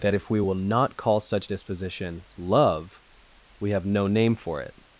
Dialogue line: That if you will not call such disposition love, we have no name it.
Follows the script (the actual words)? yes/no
no